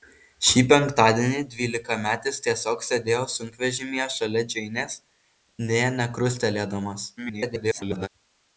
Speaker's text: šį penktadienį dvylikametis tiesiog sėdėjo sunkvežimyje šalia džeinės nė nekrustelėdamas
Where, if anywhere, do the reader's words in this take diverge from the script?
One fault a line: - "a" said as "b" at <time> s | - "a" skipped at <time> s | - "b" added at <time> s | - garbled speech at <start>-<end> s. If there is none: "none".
- garbled speech at 7.2-8.1 s